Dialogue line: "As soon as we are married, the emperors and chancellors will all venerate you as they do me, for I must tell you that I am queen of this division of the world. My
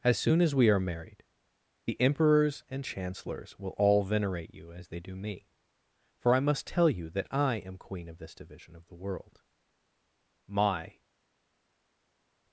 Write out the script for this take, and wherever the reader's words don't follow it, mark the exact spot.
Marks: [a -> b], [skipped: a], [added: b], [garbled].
"As soon as we are married, the emperors and chancellors will all venerate you as they do me, for I must tell you that I am queen of this division of the world. My